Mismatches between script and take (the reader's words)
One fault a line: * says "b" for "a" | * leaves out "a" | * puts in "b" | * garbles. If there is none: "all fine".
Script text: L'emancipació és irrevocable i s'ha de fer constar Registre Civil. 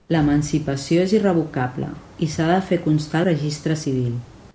all fine